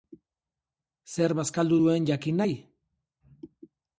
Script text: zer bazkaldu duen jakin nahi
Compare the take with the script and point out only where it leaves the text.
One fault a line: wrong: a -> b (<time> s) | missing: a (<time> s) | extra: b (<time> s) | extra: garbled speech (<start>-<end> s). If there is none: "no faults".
no faults